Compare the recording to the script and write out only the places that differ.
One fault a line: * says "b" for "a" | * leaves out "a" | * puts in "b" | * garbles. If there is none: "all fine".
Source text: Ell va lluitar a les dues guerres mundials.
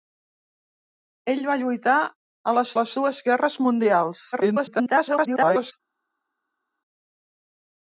* puts in "les"
* garbles